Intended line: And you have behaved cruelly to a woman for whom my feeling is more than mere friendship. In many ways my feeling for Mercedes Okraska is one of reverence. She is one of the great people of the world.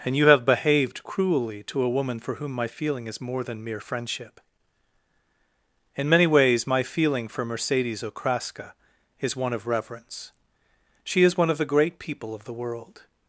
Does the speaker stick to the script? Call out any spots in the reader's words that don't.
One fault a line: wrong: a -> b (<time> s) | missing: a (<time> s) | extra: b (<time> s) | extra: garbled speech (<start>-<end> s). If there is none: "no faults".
no faults